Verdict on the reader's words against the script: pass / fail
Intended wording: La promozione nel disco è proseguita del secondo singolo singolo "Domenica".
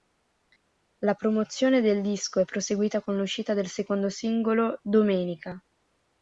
fail